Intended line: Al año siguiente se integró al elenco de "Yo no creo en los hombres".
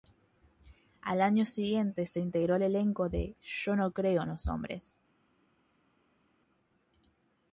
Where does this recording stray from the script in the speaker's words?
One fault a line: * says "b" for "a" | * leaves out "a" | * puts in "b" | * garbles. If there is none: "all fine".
all fine